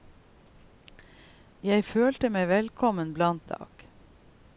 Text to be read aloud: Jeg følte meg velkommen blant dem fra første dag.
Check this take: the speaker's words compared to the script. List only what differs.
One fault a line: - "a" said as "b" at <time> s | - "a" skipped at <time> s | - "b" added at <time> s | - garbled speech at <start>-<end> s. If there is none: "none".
- "dem fra første" skipped at 3.5 s